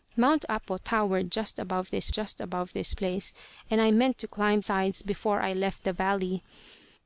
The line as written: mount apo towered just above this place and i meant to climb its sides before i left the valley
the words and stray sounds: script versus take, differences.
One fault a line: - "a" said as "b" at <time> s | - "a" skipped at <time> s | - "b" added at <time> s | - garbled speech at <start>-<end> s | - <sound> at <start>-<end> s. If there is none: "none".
- "just above this" added at 2.1 s
- "its" skipped at 4.6 s